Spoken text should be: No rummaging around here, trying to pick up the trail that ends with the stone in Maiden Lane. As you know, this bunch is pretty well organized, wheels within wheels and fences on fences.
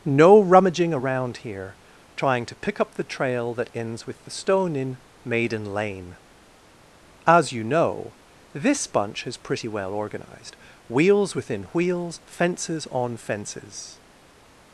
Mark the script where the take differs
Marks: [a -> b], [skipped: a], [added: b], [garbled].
No rummaging around here, trying to pick up the trail that ends with the stone in Maiden Lane. As you know, this bunch is pretty well organized, wheels within wheels [skipped: and] fences on fences.